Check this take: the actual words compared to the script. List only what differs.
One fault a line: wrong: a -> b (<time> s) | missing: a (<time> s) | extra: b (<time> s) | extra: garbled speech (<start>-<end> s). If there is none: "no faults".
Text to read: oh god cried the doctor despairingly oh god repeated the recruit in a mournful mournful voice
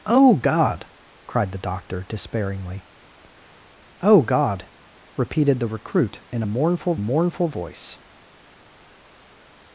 no faults